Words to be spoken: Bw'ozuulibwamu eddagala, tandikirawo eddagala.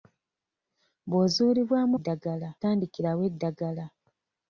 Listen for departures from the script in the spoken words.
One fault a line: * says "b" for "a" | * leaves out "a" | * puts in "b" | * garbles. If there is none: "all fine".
all fine